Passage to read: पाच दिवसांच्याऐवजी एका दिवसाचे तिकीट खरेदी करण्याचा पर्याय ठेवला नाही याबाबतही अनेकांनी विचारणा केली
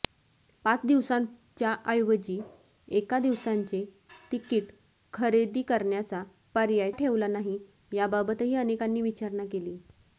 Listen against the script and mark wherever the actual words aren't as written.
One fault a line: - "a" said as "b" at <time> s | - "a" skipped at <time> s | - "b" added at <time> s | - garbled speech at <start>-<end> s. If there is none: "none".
none